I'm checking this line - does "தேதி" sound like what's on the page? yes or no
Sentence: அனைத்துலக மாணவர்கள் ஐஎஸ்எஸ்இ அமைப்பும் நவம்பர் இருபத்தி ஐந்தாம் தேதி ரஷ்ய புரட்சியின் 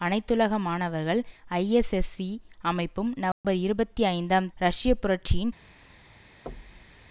no